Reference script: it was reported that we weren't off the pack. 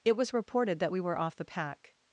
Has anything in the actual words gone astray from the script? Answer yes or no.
yes